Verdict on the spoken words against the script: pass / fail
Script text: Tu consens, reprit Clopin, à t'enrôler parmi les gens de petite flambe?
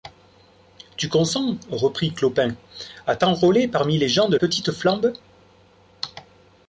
pass